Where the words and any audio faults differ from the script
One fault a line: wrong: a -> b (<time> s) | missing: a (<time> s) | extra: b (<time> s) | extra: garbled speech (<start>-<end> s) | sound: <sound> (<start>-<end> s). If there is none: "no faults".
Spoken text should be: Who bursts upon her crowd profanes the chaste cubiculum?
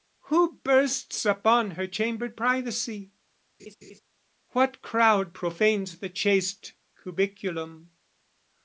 extra: chambered privacy What (1.8 s)
sound: laugh (3.6-4.0 s)